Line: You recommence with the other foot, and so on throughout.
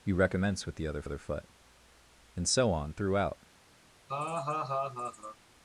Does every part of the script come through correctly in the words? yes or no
no